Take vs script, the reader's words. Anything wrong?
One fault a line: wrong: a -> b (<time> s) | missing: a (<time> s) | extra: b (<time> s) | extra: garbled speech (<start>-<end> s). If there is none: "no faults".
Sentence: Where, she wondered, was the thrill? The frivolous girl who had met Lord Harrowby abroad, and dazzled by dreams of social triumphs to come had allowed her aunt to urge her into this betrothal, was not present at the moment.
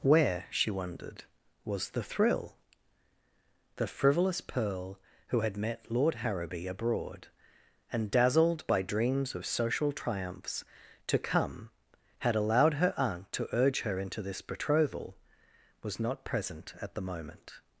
wrong: girl -> pearl (4.4 s)